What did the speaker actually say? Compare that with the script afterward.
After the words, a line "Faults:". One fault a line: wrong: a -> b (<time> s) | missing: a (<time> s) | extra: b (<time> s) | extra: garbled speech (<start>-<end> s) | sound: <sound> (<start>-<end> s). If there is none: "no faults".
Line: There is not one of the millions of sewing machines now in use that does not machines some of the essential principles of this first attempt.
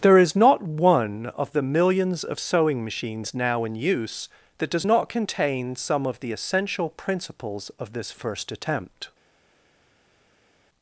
There is not one of the millions of sewing machines now in use that does not contain some of the essential principles of this first attempt.
Faults:
wrong: machines -> contain (5.1 s)